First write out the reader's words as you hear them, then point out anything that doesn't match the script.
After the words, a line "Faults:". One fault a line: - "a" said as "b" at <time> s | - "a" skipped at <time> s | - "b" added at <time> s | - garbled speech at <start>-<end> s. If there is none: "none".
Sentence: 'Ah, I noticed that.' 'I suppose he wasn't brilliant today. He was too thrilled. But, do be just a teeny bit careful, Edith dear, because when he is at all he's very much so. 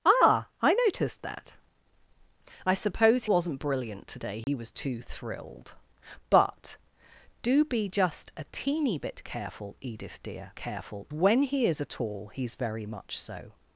'Ah, I noticed that.' 'I suppose wasn't brilliant today. He was too thrilled. But, do be just a teeny bit careful, Edith dear, careful when he is at all he's very much so.
Faults:
- "he" skipped at 3.2 s
- "because" said as "careful" at 10.6 s